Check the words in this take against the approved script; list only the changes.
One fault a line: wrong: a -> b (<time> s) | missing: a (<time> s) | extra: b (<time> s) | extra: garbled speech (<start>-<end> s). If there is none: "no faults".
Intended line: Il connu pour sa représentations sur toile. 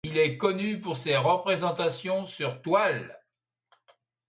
extra: est (0.2 s)
wrong: sa -> ses (1.0 s)